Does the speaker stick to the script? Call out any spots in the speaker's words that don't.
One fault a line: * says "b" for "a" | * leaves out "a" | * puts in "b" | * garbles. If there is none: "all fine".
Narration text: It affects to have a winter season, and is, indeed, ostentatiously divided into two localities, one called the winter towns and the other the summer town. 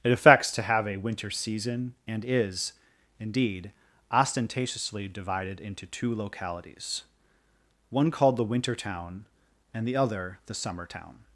* says "town" for "towns"